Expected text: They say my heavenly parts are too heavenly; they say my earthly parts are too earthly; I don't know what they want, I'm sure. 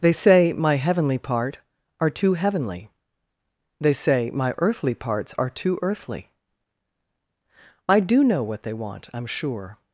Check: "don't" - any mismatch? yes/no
yes